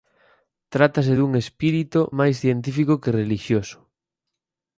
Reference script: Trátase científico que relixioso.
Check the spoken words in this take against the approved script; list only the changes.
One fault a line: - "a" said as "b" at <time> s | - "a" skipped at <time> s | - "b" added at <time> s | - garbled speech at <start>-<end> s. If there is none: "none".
- "dun espírito máis" added at 1.2 s